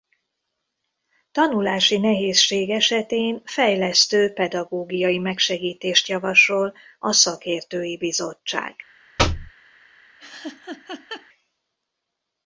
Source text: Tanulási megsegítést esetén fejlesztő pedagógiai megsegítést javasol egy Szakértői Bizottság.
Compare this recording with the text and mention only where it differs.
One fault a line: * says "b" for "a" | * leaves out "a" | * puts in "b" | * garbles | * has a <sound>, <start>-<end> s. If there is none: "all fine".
* says "nehézség" for "megsegítést"
* says "a" for "egy"
* has a thud, 9.2-9.5 s
* has a laugh, 10.2-11.3 s